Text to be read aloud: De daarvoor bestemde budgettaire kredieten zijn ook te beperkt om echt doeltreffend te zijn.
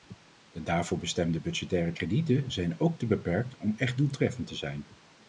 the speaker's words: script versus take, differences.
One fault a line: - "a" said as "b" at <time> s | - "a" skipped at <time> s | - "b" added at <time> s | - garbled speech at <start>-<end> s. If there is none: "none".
none